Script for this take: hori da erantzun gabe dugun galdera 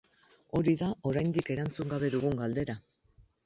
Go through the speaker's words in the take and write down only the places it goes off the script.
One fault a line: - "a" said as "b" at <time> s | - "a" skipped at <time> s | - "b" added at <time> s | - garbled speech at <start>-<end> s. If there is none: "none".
- "oraindik" added at 1.1 s